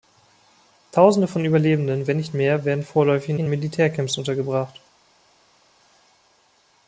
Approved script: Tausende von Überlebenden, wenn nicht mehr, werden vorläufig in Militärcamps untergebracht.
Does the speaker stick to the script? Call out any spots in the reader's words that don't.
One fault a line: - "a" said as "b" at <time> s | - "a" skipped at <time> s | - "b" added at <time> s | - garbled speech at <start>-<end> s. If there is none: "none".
- "in" added at 3.4 s